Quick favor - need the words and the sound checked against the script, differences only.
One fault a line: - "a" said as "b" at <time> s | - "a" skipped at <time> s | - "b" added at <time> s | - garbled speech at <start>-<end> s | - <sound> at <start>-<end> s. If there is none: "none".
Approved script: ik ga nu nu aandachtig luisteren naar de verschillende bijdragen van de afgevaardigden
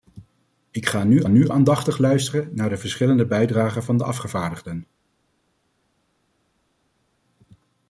none